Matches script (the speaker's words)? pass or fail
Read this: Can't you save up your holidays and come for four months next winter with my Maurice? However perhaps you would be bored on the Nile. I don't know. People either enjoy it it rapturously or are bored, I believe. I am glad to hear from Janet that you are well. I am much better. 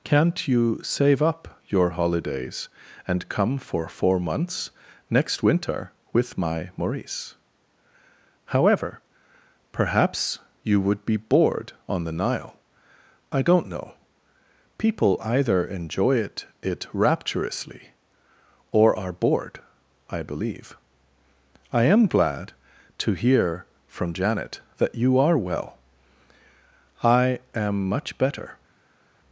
pass